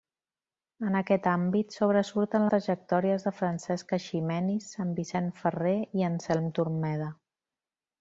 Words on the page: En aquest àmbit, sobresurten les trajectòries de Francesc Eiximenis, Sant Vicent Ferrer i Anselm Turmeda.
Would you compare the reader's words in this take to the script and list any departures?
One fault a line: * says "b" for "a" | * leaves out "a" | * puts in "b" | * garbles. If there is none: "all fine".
* leaves out "les"